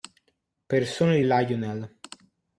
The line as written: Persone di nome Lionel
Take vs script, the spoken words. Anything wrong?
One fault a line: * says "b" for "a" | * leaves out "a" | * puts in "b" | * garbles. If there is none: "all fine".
* leaves out "nome"